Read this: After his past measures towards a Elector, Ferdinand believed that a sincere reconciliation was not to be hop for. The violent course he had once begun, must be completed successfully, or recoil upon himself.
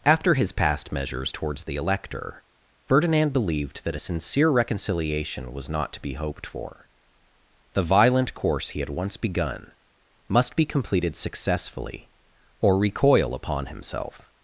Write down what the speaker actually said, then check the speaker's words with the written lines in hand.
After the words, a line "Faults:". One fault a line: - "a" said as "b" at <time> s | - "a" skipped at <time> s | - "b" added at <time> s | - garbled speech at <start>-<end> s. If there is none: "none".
After his past measures towards the Elector, Ferdinand believed that a sincere reconciliation was not to be hoped for. The violent course he had once begun, must be completed successfully, or recoil upon himself.
Faults:
- "a" said as "the" at 1.6 s
- "hop" said as "hoped" at 6.1 s